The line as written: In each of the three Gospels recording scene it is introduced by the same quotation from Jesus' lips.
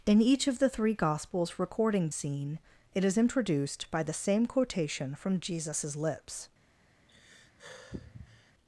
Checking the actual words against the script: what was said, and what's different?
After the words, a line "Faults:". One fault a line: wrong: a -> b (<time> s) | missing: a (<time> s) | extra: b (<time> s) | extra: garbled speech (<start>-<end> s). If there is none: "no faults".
In each of the three Gospels recording scene it is introduced by the same quotation from Jesus' lips.
Faults:
no faults